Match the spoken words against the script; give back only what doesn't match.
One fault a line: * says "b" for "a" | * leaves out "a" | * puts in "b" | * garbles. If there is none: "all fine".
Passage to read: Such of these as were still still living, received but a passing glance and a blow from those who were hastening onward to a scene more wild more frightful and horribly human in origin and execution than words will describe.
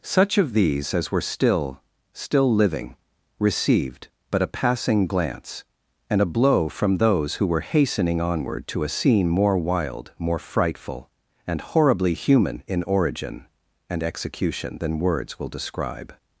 all fine